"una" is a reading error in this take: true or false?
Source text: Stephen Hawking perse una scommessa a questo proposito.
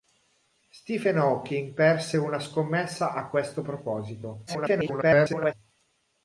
false